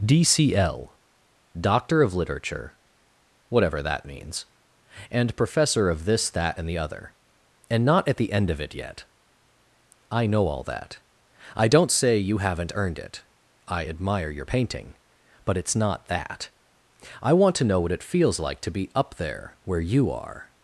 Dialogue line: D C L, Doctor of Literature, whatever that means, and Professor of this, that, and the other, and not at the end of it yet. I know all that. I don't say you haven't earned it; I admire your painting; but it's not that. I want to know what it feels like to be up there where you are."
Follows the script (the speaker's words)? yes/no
yes